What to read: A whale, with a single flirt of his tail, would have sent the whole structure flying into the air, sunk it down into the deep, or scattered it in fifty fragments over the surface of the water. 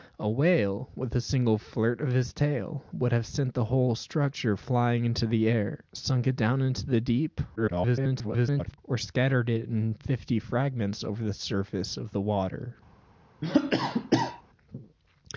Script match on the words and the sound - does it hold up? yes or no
no